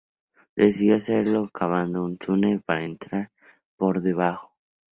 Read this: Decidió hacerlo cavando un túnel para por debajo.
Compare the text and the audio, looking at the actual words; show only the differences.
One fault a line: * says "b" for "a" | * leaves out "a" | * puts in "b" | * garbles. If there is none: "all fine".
* puts in "entrar"